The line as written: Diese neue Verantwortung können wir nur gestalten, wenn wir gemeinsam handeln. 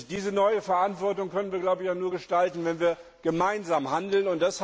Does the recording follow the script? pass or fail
pass